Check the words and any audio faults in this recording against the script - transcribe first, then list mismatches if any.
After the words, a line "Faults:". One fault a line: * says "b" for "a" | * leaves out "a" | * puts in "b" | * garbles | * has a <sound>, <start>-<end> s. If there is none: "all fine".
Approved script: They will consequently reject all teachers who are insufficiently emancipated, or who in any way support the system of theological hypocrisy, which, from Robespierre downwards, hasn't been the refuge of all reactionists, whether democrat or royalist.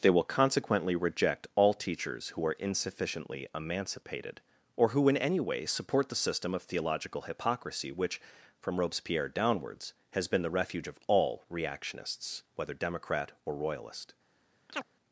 They will consequently reject all teachers who are insufficiently emancipated, or who in any way support the system of theological hypocrisy, which, from Robespierre downwards, has been the refuge of all reactionists, whether democrat or royalist.
Faults:
* says "has" for "hasn't"
* has a chirp, 14.7-14.9 s